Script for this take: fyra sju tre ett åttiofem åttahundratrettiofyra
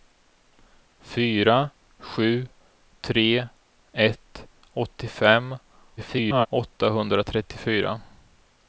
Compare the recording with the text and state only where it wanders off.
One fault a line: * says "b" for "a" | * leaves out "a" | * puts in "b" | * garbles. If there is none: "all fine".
* garbles